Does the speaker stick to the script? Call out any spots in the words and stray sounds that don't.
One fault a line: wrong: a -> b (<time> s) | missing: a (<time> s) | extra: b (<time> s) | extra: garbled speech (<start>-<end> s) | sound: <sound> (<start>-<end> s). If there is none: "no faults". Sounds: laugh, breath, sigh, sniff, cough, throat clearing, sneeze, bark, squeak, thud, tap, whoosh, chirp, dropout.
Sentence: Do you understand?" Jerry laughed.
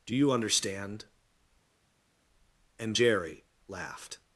extra: And (2.8 s)